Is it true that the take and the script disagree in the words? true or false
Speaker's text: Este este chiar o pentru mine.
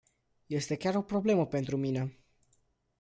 true